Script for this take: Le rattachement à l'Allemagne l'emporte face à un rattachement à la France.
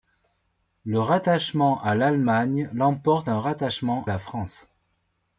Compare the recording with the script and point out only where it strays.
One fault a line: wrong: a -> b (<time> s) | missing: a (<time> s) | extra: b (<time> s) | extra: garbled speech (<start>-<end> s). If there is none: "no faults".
missing: face (3.3 s)
missing: à (4.1 s)